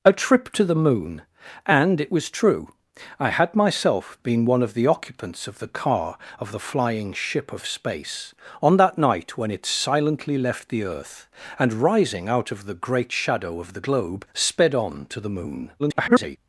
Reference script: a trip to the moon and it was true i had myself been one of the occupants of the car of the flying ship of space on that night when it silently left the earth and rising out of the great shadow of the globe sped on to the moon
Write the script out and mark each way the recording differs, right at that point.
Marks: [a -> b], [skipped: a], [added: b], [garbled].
a trip to the moon and it was true i had myself been one of the occupants of the car of the flying ship of space on that night when it silently left the earth and rising out of the great shadow of the globe sped on to the moon [garbled]